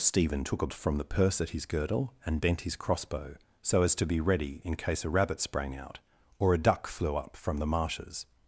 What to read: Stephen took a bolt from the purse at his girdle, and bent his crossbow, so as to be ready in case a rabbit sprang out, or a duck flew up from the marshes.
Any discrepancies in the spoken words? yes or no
yes